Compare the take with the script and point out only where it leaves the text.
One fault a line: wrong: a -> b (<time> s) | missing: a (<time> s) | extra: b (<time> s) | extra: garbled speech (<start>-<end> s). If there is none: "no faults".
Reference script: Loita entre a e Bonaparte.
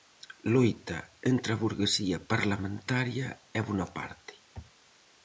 extra: burguesía parlamentaria (1.6 s)